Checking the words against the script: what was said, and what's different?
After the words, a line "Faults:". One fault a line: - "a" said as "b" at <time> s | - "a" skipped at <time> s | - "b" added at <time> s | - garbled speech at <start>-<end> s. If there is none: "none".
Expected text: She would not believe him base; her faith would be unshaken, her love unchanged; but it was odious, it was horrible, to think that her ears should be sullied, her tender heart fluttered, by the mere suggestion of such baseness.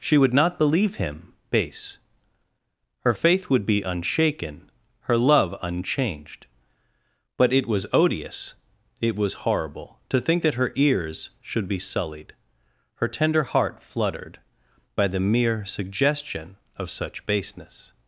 She would not believe him base; her faith would be unshaken, her love unchanged; but it was odious, it was horrible, to think that her ears should be sullied, her tender heart fluttered, by the mere suggestion of such baseness.
Faults:
none